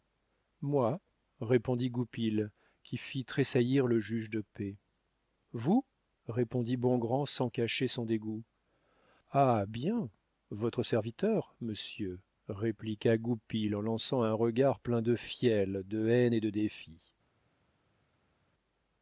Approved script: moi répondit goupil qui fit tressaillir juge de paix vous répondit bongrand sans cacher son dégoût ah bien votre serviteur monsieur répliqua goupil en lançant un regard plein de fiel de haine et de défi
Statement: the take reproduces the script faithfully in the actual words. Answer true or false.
false